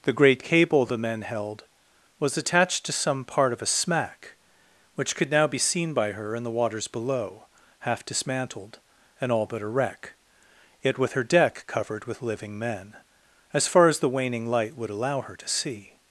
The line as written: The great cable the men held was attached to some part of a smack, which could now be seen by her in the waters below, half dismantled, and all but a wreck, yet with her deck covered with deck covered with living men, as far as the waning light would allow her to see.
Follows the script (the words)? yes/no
no